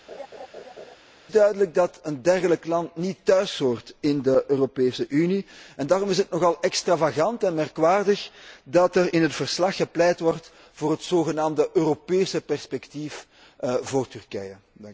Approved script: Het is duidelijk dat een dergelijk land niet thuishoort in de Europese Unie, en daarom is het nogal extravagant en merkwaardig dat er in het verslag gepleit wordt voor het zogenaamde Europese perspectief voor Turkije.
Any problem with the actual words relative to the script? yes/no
no